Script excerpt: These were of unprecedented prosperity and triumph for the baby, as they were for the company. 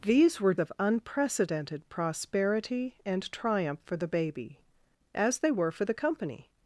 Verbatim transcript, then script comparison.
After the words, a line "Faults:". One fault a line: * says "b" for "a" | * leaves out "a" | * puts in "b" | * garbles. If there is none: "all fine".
These were of unprecedented prosperity and triumph for the baby, as they were for the company.
Faults:
all fine